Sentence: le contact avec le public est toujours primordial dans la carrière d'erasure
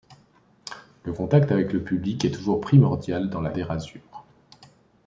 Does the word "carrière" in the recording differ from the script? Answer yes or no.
yes